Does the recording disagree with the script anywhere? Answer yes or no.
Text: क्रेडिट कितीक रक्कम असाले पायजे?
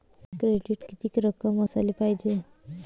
no